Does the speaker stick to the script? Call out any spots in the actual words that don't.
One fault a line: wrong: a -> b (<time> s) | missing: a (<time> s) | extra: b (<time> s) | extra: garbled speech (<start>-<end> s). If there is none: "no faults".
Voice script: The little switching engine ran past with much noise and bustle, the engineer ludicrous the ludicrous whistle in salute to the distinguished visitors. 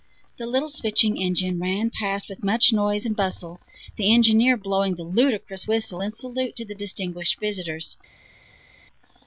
wrong: ludicrous -> blowing (4.6 s)